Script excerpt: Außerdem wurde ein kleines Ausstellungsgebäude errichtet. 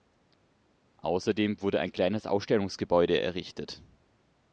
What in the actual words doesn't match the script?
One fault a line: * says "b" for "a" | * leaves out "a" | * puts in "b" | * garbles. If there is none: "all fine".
all fine